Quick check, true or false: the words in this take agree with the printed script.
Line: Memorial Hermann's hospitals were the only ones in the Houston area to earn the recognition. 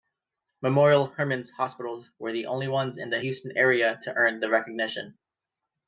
true